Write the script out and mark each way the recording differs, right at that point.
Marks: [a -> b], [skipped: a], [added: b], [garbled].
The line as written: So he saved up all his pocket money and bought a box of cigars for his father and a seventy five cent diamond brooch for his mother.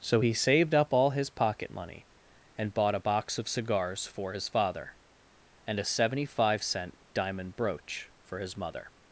So he saved up all his pocket money and bought a box of cigars for his father and a seventy five cent diamond brooch for his mother.